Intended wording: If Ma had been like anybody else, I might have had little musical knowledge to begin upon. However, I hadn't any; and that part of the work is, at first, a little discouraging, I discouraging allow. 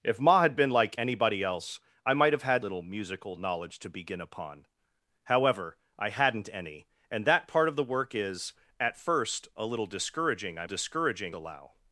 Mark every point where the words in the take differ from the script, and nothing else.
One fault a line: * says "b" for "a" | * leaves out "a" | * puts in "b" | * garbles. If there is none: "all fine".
all fine